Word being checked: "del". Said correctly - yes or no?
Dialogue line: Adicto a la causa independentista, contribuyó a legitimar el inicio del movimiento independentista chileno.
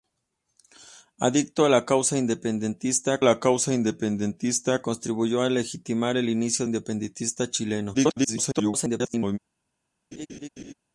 no